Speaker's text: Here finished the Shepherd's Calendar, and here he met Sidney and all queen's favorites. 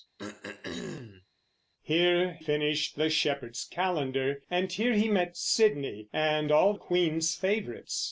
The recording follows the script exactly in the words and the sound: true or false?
false